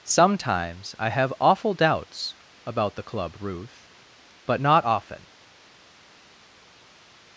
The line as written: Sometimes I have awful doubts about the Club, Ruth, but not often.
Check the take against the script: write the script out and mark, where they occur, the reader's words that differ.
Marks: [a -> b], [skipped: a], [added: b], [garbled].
Sometimes I have awful doubts about the Club, Ruth, but not often.